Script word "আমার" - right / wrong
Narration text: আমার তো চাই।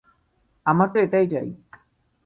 right